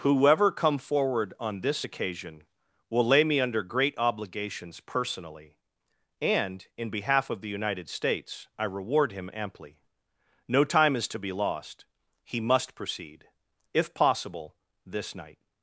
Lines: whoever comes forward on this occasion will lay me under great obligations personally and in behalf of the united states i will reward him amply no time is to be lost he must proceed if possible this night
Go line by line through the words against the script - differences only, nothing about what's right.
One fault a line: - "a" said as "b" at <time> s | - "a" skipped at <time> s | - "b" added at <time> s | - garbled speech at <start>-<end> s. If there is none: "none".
- "comes" said as "come" at 0.5 s
- "will" skipped at 8.6 s